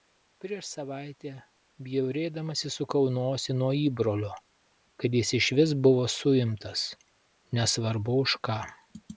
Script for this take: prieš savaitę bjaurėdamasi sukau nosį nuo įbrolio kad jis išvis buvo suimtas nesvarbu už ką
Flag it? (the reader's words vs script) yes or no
no